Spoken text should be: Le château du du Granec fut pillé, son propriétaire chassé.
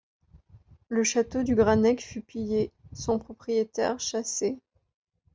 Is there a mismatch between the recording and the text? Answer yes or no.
yes